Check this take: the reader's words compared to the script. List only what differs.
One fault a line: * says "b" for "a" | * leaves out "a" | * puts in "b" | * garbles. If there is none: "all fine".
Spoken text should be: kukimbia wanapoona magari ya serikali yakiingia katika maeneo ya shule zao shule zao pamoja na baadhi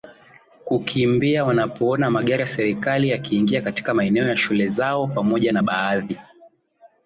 * leaves out "shule zao"